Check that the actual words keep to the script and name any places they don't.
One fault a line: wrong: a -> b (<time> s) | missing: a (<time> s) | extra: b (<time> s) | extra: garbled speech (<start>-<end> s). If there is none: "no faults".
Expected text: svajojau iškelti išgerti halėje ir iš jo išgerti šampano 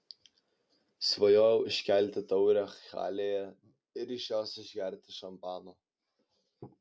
wrong: išgerti -> taurę (2.3 s)
wrong: jo -> jos (4.3 s)